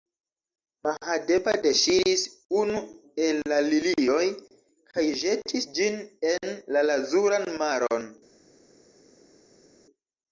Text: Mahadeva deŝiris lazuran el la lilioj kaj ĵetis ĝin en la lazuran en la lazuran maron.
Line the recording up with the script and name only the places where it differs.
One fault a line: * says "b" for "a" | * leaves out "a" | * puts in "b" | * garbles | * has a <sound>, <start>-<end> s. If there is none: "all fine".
* says "unu" for "lazuran"
* leaves out "en la lazuran"